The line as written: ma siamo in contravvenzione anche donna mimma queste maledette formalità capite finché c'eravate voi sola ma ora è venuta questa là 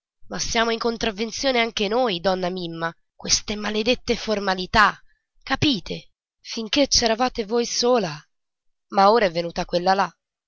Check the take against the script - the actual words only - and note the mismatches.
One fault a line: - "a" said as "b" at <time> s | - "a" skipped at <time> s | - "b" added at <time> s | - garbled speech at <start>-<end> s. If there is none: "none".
- "noi" added at 1.9 s
- "questa" said as "quella" at 9.6 s